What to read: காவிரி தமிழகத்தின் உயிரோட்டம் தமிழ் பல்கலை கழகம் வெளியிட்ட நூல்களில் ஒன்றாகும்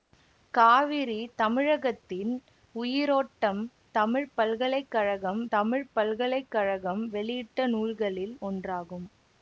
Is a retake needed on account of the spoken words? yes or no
yes